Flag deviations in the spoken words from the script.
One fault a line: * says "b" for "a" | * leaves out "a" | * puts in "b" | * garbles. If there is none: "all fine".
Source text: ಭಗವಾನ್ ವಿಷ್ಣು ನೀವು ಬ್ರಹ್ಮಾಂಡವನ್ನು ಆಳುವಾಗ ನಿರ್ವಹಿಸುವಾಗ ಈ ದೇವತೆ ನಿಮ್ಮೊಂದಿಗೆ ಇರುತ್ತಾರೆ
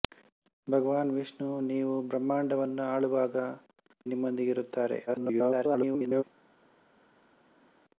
* leaves out "ನಿರ್ವಹಿಸುವಾಗ ಈ ದೇವತೆ"
* garbles